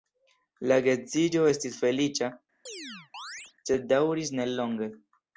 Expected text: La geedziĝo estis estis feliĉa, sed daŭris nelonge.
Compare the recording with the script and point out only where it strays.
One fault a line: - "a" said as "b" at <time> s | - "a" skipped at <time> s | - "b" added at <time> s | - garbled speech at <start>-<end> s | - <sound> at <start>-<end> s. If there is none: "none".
- "estis" skipped at 1.8 s
- chirp at 2.7-3.5 s